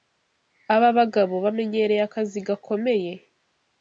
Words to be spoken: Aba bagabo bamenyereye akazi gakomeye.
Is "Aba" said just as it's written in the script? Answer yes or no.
yes